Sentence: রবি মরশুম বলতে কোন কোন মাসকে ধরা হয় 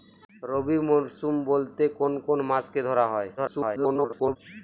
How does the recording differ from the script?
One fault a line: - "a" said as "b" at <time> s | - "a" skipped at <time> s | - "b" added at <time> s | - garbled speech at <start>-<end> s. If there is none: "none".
- garbled speech at 3.4-4.4 s